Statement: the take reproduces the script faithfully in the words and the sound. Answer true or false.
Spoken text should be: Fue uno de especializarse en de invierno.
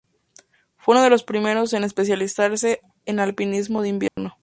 false